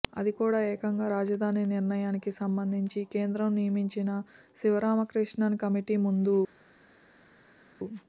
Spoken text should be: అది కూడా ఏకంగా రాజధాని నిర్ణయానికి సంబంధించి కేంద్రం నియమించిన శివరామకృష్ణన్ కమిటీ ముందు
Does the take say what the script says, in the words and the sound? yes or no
yes